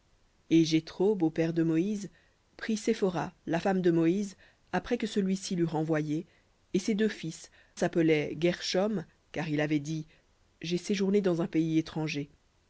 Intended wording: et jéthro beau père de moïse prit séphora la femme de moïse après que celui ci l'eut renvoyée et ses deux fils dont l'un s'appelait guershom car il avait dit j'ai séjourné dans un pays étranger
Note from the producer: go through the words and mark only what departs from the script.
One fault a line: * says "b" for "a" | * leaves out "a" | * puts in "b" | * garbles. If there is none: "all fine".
* leaves out "dont l'un"